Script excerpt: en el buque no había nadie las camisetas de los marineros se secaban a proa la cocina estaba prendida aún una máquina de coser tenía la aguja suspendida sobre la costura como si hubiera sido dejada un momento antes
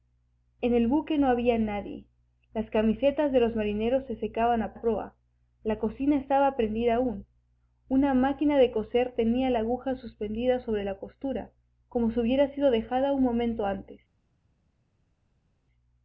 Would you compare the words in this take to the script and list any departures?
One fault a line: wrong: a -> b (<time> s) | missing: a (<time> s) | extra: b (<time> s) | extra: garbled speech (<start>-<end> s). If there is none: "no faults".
extra: a (4.7 s)